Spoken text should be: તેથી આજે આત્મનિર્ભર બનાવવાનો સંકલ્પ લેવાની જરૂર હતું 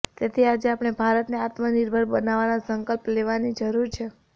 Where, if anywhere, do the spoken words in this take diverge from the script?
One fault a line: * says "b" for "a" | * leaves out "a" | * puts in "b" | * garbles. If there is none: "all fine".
* puts in "આપણે ભારતને"
* says "છે" for "હતું"